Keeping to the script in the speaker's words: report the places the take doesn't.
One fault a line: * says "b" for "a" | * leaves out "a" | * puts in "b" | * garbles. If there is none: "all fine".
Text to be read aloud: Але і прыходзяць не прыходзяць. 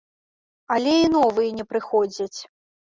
* says "новыя" for "прыходзяць"